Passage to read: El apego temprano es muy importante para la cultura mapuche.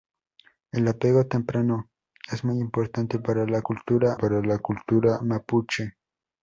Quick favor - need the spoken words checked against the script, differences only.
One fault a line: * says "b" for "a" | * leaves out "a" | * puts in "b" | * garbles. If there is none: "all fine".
* puts in "para la cultura"